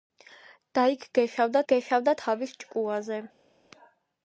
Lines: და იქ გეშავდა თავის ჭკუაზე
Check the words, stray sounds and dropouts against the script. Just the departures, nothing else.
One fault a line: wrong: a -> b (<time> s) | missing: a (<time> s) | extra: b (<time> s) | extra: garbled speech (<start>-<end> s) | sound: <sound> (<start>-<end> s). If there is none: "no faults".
extra: გეშავდა (1.7 s)